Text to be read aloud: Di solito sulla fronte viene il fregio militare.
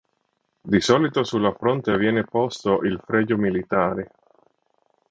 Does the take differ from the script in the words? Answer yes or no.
yes